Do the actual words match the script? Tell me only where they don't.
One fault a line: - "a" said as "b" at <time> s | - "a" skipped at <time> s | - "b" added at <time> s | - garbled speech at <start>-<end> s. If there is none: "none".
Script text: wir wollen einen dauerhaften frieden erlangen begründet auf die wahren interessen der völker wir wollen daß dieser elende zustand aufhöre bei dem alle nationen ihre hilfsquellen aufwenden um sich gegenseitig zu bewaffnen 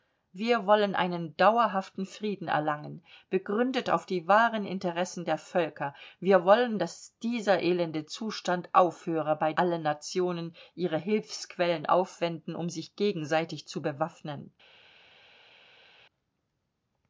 - "dem" skipped at 9.5 s